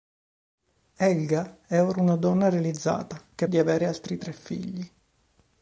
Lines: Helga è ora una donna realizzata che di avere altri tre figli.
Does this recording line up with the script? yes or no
yes